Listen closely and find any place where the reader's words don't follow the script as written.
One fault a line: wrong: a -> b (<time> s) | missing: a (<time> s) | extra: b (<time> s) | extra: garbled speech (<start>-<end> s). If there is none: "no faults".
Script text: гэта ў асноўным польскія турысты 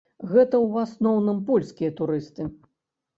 no faults